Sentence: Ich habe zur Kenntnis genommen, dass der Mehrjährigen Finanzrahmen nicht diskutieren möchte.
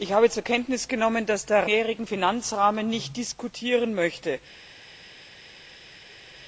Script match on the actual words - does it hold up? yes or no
yes